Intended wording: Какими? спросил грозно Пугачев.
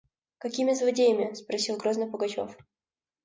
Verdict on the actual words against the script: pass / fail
fail